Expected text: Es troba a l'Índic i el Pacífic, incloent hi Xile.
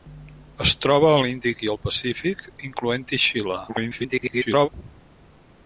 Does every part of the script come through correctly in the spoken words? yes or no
no